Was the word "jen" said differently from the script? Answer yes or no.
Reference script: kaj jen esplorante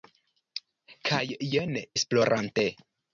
no